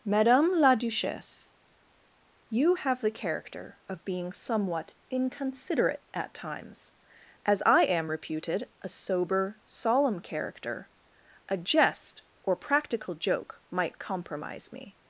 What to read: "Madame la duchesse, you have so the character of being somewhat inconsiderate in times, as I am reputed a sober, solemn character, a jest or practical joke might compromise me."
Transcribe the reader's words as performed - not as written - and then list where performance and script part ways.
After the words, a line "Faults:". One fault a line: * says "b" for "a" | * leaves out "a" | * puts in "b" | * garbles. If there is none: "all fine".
"Madame la duchesse, you have the character of being somewhat inconsiderate at times, as I am reputed a sober, solemn character, a jest or practical joke might compromise me."
Faults:
* leaves out "so"
* says "at" for "in"